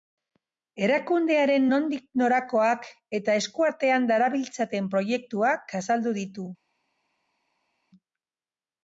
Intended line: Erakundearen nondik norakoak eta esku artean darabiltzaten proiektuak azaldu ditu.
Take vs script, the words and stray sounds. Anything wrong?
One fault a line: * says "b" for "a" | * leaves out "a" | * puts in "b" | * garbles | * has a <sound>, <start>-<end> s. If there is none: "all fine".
all fine